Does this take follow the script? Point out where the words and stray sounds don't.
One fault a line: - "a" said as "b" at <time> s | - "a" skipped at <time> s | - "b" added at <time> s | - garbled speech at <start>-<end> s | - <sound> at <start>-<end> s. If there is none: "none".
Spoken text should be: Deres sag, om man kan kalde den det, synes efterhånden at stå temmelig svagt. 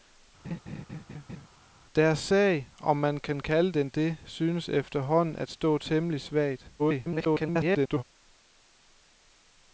- laugh at 0.4-1.5 s
- garbled speech at 6.8-8.0 s